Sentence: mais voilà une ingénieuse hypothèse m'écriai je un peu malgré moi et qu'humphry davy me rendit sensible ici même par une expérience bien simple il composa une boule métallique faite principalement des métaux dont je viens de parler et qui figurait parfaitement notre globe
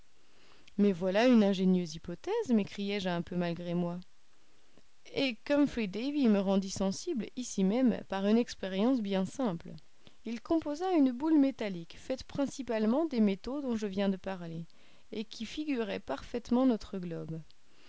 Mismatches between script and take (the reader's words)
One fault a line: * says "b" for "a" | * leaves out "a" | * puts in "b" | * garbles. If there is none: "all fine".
all fine